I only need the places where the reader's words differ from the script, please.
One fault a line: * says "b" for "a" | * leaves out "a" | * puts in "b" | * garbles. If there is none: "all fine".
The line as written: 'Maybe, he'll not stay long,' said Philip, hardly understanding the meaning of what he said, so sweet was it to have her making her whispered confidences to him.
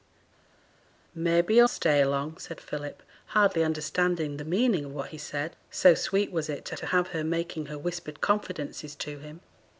* leaves out "not"
* puts in "to"